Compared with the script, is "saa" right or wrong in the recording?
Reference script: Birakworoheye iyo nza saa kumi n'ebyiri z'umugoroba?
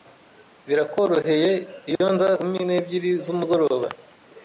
wrong